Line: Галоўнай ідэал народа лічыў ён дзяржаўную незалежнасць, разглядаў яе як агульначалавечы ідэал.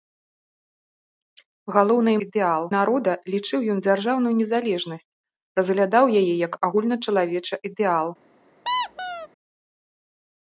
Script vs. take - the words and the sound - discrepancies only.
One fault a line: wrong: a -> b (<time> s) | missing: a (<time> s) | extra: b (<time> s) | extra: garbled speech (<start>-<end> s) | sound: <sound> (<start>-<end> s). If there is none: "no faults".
sound: squeak (8.6-9.3 s)